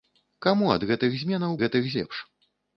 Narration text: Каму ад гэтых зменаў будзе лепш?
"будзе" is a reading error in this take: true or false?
true